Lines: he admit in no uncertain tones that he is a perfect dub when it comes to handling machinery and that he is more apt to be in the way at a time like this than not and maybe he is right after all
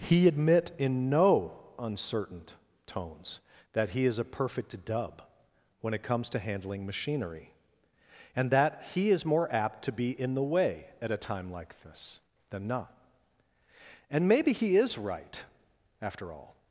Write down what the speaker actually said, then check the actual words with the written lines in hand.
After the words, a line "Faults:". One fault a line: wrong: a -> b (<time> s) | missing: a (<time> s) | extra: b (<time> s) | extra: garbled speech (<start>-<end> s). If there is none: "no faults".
he admit in no uncertain tones that he is a perfect dub when it comes to handling machinery and that he is more apt to be in the way at a time like this than not and maybe he is right after all
Faults:
no faults